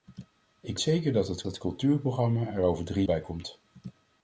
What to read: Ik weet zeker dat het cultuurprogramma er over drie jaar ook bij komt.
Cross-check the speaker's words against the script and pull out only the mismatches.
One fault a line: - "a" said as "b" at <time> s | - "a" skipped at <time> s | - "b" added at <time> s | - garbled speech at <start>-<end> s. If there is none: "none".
- "weet" skipped at 0.8 s
- "het" added at 1.4 s
- "jaar ook" skipped at 3.0 s